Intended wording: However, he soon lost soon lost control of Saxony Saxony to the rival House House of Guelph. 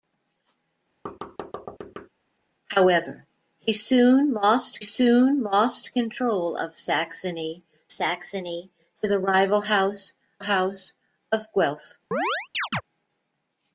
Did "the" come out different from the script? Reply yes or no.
no